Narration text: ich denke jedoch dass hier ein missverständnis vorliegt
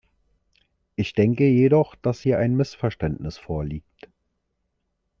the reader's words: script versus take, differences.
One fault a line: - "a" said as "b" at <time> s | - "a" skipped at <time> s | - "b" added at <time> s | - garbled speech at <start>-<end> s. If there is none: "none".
none